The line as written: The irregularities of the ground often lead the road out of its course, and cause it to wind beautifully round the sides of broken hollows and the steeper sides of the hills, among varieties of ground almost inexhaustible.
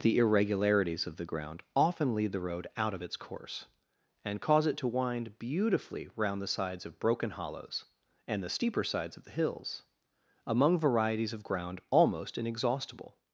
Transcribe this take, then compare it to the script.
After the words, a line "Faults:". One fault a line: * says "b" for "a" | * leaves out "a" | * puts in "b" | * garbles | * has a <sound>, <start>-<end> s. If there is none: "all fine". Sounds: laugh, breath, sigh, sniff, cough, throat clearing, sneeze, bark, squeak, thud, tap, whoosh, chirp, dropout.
The irregularities of the ground often lead the road out of its course, and cause it to wind beautifully round the sides of broken hollows and the steeper sides of the hills, among varieties of ground almost inexhaustible.
Faults:
all fine